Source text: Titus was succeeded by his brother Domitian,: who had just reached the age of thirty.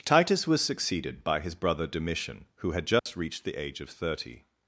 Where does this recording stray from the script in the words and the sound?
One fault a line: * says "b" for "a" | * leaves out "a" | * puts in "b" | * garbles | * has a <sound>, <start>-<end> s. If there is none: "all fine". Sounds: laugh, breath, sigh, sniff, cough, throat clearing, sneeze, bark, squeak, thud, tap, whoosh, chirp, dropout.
* has a dropout, 3.0-3.1 s